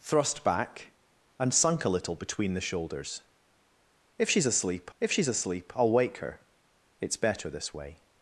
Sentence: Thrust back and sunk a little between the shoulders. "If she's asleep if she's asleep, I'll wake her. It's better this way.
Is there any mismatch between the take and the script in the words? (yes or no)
no